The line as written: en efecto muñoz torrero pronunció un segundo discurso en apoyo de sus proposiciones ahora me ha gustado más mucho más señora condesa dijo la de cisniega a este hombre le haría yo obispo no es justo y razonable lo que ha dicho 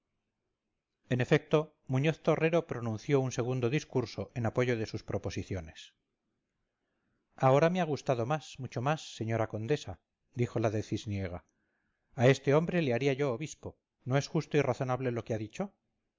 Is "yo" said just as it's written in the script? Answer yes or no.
yes